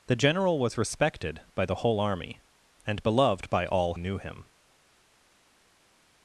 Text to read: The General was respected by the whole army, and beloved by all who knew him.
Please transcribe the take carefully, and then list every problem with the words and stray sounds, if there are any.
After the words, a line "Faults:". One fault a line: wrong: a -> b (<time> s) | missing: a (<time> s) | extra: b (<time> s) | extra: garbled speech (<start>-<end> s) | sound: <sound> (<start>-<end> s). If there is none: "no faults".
The General was respected by the whole army, and beloved by all knew him.
Faults:
missing: who (4.0 s)